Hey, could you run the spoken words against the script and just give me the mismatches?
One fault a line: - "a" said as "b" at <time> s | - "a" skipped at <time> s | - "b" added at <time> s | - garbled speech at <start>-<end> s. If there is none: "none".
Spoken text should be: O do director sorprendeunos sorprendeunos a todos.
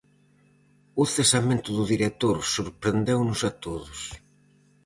- "cesamento" added at 1.1 s
- "sorprendeunos" skipped at 3.4 s